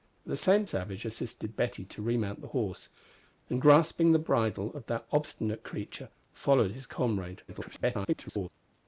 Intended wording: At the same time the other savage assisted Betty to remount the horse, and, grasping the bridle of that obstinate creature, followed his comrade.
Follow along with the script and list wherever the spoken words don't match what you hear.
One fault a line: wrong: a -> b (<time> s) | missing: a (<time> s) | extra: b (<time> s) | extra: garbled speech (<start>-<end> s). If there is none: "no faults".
missing: time the other (0.7 s)
extra: garbled speech (7.5-8.5 s)